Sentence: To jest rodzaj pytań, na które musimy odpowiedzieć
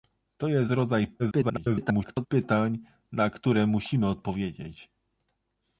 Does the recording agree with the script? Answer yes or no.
no